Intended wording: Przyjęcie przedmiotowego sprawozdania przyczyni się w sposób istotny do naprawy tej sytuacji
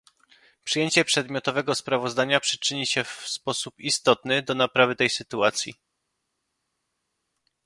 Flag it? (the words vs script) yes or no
no